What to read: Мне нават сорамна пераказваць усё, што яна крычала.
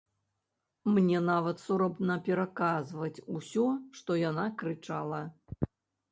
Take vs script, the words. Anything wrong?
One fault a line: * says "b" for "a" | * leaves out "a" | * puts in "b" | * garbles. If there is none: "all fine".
all fine